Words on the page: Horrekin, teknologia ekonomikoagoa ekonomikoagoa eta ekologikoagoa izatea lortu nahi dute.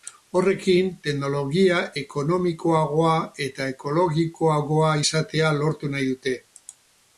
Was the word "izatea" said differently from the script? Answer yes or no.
no